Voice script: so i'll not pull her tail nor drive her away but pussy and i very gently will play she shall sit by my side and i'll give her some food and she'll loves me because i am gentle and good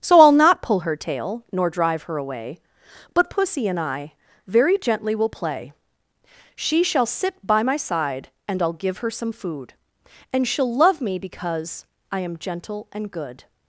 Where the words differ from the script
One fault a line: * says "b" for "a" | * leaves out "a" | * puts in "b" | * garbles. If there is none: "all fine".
* says "love" for "loves"